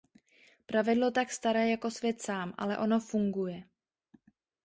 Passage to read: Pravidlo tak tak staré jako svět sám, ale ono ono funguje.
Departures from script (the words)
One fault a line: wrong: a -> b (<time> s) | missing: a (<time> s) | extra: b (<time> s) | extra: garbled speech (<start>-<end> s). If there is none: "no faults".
missing: tak (1.3 s)
missing: ono (3.0 s)